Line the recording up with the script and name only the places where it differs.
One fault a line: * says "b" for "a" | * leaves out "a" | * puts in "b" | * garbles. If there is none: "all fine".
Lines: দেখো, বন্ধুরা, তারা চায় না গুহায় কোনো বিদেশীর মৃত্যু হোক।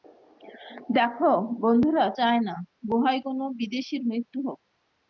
* leaves out "তারা"